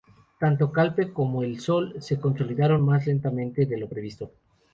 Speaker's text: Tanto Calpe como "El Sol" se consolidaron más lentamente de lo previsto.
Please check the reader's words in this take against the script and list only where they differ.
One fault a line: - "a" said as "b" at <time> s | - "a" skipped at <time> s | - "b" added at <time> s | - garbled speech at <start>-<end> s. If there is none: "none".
none